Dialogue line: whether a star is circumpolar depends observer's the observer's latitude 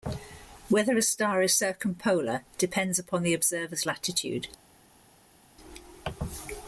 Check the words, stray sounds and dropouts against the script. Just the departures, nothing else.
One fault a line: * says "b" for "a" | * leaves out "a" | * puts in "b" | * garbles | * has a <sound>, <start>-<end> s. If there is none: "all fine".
* says "upon" for "observer's"